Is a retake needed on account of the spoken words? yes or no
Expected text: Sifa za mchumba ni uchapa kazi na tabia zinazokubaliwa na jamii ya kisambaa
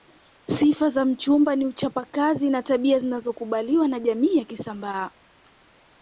no